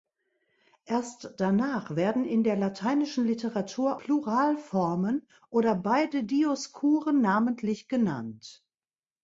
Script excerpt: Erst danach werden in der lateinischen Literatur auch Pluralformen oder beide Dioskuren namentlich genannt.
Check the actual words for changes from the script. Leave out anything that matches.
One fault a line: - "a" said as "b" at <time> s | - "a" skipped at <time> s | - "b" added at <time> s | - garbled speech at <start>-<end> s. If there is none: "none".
- "auch" skipped at 4.0 s